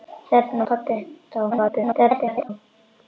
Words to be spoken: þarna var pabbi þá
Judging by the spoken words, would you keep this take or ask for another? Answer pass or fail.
fail